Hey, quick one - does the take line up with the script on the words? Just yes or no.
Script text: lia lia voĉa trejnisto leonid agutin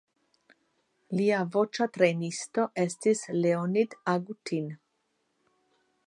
no